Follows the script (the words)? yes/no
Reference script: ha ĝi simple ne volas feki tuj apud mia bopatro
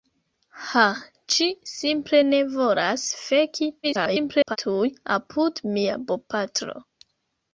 no